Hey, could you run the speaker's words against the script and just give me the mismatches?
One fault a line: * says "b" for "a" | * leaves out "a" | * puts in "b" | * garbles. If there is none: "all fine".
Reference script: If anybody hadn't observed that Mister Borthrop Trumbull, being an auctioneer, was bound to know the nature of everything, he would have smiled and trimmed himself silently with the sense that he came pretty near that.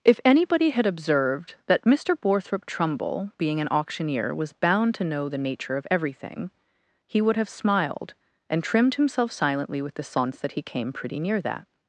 * says "had" for "hadn't"